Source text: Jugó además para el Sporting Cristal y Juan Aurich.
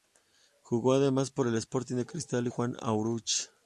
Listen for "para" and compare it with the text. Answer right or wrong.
wrong